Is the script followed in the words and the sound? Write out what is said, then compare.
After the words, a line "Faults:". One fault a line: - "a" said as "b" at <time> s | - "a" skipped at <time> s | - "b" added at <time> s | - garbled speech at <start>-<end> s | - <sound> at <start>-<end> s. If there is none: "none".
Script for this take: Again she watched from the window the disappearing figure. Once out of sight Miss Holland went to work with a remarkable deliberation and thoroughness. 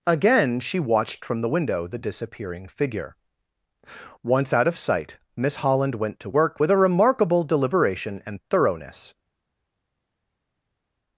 Again she watched from the window the disappearing figure. Once out of sight Miss Holland went to work with a remarkable deliberation and thoroughness.
Faults:
none